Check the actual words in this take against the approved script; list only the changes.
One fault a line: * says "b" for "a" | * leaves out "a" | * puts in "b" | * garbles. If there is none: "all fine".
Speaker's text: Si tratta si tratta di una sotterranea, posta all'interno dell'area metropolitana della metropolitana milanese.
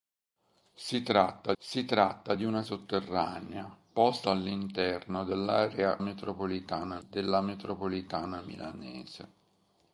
all fine